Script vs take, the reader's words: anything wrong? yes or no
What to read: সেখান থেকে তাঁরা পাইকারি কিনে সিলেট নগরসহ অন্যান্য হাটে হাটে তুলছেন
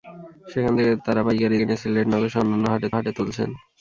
no